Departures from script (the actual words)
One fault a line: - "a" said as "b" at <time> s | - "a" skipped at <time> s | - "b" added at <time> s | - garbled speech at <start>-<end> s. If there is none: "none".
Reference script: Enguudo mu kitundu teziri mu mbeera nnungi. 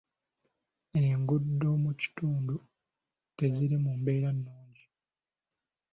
none